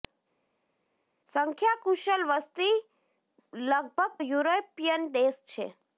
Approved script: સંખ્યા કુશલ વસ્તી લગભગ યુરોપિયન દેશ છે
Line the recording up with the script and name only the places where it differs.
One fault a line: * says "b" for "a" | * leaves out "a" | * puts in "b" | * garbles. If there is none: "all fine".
all fine